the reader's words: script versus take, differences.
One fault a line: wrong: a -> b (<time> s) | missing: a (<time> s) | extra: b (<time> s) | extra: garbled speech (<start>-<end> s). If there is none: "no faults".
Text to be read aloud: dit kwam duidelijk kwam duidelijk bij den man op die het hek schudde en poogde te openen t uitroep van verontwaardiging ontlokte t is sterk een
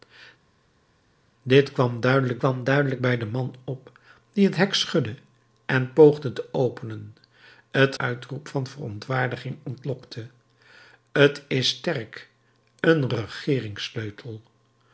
no faults